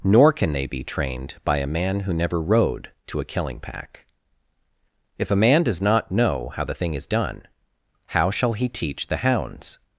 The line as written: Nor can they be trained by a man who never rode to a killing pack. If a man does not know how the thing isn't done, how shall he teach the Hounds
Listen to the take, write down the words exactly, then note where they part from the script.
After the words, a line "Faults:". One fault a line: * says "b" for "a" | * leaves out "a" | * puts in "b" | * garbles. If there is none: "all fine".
Nor can they be trained by a man who never rode to a killing pack. If a man does not know how the thing is done, how shall he teach the Hounds
Faults:
* says "is" for "isn't"